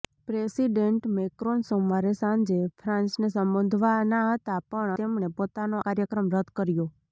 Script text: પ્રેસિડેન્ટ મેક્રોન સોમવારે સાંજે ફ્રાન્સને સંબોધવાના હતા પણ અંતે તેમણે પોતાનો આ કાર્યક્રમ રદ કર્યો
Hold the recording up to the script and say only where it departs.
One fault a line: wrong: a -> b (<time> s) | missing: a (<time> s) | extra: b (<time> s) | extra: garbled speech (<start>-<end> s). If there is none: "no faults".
missing: અંતે (5.0 s)
missing: આ (5.9 s)